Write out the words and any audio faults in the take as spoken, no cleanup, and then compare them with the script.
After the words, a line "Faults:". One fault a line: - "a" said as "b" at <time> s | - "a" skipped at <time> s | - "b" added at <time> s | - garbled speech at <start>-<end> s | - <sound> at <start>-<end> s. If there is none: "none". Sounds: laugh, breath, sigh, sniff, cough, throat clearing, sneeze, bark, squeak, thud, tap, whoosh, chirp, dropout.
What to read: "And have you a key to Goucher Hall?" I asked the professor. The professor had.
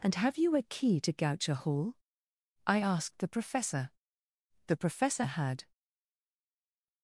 "And have you a key to Goucher Hall?" I asked the professor. The professor had.
Faults:
none